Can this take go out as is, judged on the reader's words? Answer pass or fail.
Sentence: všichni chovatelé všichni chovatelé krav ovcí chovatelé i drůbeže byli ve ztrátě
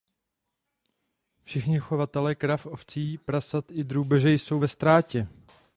fail